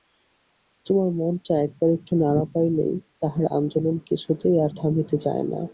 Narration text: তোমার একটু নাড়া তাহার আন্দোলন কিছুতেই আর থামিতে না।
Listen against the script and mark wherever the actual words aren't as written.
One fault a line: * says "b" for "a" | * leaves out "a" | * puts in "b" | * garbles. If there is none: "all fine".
* puts in "মনটা একবার"
* puts in "পাইলেই"
* puts in "চায়"